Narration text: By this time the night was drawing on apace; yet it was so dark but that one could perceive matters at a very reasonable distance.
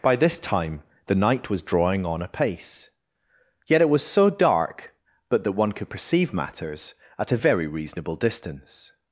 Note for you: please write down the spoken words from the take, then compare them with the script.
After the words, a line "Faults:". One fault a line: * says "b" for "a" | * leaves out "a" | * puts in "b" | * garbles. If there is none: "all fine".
By this time the night was drawing on apace; yet it was so dark but that one could perceive matters at a very reasonable distance.
Faults:
all fine